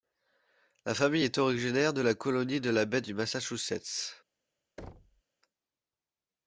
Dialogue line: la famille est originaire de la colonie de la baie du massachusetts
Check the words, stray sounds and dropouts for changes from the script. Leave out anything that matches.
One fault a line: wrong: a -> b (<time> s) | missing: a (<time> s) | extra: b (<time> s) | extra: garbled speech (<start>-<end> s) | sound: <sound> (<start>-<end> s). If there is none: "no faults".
sound: thud (4.8-5.2 s)